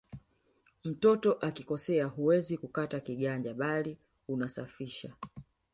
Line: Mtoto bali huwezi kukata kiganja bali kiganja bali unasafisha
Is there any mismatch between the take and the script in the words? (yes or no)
yes